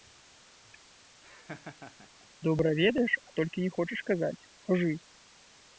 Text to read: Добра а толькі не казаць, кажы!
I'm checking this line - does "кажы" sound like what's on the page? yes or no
yes